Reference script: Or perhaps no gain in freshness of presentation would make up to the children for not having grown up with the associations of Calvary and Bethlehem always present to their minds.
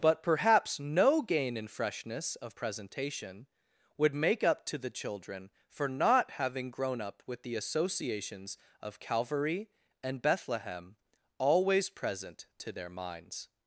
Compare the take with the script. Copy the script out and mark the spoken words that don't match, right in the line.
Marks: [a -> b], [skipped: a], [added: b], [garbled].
[Or -> But] perhaps no gain in freshness of presentation would make up to the children for not having grown up with the associations of Calvary and Bethlehem always present to their minds.